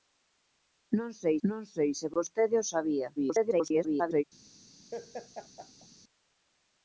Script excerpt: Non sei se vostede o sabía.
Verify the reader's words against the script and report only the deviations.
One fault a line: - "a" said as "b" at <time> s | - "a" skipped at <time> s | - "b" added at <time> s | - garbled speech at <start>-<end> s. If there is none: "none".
- "non sei" added at 1.5 s
- garbled speech at 3.2-4.2 s